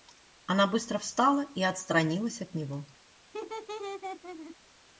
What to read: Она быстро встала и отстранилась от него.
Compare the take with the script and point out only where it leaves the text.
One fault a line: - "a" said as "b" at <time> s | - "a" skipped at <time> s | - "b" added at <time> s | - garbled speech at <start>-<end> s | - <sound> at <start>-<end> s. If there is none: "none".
- laugh at 3.3-4.6 s